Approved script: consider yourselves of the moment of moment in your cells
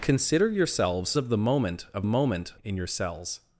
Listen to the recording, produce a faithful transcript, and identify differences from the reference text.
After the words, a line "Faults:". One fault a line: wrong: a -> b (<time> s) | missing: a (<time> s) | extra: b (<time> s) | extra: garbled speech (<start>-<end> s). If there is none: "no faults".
consider yourselves of the moment of moment in your cells
Faults:
no faults